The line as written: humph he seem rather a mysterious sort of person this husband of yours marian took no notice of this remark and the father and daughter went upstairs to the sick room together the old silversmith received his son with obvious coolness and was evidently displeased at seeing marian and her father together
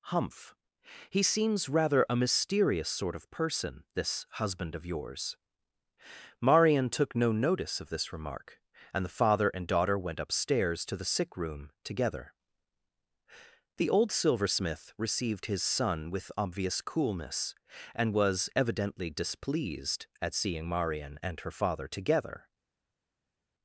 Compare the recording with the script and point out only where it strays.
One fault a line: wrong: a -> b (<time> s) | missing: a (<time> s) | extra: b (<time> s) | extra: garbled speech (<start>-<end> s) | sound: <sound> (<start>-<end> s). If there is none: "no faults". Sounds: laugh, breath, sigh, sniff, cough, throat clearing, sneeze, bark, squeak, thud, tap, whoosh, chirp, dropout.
wrong: seem -> seems (1.2 s)